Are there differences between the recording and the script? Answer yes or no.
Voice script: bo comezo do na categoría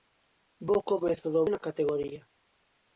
no